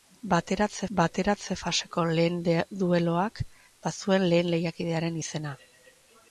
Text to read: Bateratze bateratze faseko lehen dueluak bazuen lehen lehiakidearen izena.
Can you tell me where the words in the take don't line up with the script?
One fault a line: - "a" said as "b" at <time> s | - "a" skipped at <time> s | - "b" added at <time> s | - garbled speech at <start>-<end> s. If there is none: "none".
none